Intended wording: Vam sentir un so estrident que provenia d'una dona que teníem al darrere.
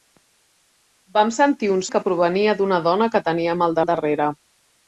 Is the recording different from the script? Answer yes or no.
yes